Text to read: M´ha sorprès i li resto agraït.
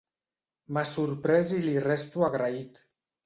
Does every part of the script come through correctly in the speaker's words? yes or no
yes